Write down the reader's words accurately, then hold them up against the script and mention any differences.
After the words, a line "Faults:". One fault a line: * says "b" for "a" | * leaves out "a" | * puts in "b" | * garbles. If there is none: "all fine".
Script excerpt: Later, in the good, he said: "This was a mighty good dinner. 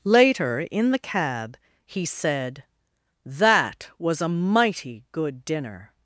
Later, in the cab, he said: "That was a mighty good dinner.
Faults:
* says "cab" for "good"
* says "That" for "This"